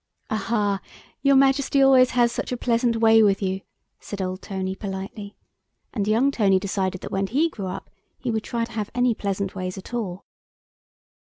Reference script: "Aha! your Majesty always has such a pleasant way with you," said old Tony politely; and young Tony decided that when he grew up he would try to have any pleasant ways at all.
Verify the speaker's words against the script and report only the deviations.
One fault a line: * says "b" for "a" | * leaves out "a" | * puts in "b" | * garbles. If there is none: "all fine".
all fine